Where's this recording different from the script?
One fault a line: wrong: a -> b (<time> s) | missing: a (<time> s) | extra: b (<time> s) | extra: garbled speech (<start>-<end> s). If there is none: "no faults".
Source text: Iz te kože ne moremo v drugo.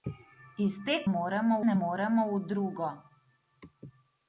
wrong: kože -> moremo (1.1 s)